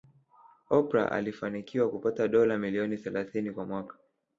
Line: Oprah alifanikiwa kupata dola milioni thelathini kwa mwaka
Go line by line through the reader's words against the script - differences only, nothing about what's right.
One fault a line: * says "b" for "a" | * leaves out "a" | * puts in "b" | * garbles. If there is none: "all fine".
all fine